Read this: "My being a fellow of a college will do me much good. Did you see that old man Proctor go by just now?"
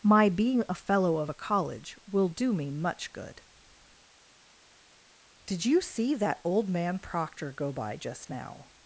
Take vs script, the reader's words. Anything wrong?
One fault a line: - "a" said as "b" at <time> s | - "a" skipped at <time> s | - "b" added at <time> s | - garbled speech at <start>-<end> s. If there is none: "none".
none